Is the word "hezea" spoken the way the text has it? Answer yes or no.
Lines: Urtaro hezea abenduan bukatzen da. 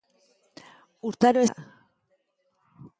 no